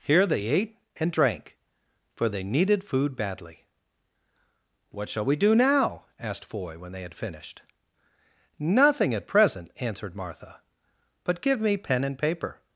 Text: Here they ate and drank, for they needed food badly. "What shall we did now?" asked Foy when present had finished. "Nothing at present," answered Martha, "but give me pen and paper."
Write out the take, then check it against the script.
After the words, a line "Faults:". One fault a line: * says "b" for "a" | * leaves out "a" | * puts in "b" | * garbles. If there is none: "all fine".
Here they ate and drank, for they needed food badly. "What shall we do now?" asked Foy when they had finished. "Nothing at present," answered Martha, "but give me pen and paper."
Faults:
* says "do" for "did"
* says "they" for "present"